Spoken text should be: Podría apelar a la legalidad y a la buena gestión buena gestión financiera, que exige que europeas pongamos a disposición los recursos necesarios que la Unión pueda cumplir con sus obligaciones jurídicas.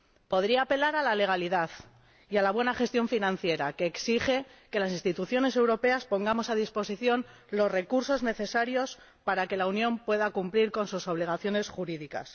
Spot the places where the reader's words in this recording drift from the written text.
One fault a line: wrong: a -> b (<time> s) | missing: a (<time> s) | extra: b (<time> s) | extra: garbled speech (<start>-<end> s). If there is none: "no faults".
missing: buena gestión (3.1 s)
extra: las instituciones (4.8 s)
extra: para (9.2 s)